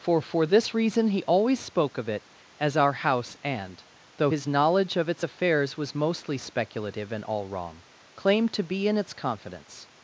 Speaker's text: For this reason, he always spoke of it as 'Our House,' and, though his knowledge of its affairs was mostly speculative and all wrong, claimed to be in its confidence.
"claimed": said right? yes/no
yes